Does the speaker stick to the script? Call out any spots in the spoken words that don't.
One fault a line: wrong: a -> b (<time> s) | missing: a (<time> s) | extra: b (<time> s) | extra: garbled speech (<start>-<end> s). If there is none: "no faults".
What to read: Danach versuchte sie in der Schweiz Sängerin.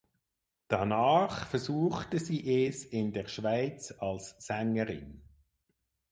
extra: es (2.6 s)
extra: als (4.0 s)